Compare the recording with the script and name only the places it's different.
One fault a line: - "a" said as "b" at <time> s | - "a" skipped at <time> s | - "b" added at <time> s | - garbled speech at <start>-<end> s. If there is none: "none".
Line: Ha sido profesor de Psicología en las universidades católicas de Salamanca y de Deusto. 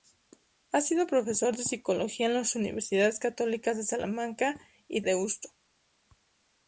- "de" skipped at 5.0 s